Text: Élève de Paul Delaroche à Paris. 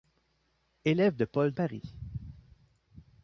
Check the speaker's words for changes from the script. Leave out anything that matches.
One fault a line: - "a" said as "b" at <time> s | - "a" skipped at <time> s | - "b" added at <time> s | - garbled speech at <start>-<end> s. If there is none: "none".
- "Delaroche à" skipped at 1.5 s